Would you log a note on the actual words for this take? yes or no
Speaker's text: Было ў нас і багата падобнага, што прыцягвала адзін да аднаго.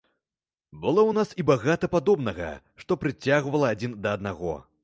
no